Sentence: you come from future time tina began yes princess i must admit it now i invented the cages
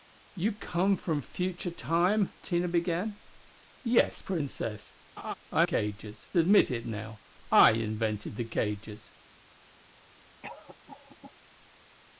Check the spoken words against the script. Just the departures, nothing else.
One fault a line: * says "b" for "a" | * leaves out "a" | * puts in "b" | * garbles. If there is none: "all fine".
* says "cages" for "must"